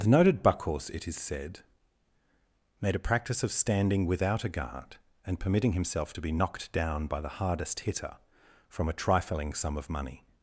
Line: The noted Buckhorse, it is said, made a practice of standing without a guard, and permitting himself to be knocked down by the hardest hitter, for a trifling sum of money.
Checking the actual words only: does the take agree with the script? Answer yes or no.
no